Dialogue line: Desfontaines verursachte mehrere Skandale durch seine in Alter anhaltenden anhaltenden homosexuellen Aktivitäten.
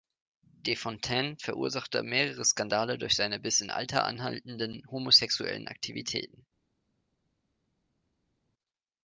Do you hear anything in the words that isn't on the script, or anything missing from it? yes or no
yes